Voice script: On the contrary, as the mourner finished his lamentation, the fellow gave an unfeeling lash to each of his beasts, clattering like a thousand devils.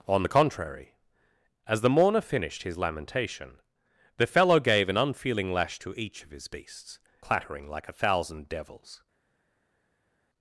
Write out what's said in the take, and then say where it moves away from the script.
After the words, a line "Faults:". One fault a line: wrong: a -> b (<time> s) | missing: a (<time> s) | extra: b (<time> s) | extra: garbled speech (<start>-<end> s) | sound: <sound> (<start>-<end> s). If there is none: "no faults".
On the contrary, as the mourner finished his lamentation, the fellow gave an unfeeling lash to each of his beasts, clattering like a thousand devils.
Faults:
no faults